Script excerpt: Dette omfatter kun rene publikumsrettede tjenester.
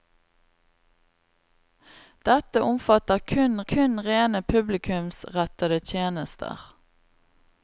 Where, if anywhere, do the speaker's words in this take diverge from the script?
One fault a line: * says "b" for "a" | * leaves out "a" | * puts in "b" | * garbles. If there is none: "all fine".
* puts in "kun"